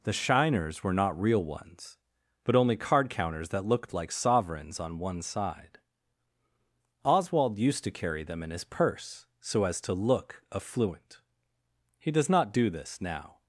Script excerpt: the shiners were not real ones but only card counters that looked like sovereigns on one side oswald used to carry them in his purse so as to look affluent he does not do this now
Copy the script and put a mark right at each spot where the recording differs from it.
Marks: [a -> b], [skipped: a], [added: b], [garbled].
the shiners were not real ones but only card counters that looked like sovereigns on one side oswald used to carry them in his purse so as to look affluent he does not do this now